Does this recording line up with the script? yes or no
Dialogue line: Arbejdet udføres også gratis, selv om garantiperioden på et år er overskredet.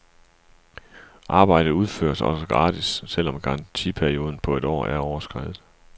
yes